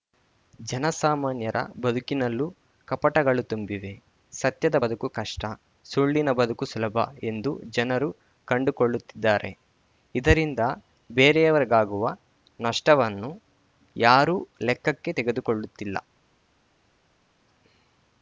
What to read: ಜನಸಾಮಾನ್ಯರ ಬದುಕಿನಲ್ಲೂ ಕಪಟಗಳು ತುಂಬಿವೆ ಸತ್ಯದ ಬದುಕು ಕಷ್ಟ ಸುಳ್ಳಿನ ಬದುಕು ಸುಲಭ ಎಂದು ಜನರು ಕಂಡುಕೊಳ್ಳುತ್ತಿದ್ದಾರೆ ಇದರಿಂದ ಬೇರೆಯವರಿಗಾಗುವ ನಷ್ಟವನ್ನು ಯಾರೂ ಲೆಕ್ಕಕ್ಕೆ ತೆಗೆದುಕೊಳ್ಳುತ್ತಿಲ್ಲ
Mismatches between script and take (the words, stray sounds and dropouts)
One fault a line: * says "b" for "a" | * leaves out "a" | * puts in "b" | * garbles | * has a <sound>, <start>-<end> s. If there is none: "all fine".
all fine